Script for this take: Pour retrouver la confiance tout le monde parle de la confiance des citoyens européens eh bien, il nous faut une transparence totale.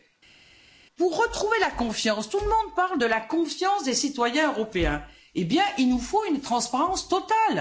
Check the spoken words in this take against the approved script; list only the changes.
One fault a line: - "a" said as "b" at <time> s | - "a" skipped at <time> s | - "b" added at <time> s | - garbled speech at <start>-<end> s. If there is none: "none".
none